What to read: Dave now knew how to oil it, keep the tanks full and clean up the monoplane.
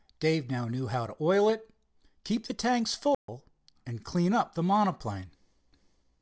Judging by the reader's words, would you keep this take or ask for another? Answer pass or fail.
pass